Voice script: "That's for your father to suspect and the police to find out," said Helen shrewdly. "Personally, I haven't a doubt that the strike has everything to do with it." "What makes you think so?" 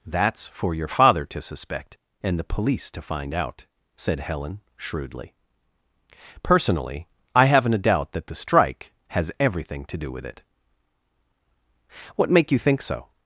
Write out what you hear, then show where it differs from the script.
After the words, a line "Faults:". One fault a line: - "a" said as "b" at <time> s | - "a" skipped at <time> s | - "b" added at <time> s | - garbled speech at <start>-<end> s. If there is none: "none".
"That's for your father to suspect and the police to find out," said Helen shrewdly. "Personally, I haven't a doubt that the strike has everything to do with it." "What make you think so?"
Faults:
- "makes" said as "make" at 12.3 s